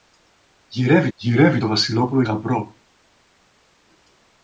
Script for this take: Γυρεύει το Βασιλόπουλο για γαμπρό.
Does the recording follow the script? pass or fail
fail